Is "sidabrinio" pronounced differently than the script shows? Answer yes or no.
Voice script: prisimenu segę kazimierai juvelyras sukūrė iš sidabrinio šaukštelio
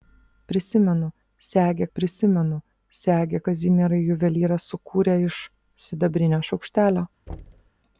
no